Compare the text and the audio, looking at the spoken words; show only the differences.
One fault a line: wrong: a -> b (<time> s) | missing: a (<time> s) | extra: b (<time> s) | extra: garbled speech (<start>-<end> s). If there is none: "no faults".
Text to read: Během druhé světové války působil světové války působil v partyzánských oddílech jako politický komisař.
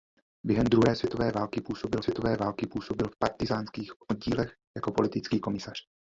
no faults